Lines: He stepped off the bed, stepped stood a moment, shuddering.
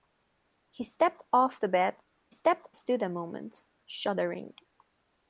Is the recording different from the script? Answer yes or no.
no